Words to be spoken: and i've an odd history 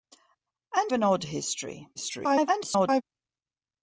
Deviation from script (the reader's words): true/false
true